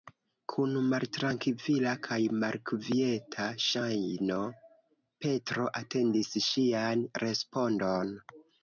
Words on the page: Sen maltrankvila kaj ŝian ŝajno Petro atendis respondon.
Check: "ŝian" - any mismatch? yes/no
yes